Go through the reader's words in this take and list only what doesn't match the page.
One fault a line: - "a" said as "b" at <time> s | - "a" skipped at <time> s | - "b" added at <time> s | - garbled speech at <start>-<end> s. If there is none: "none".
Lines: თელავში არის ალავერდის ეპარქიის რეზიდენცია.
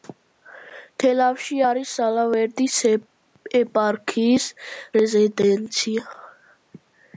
none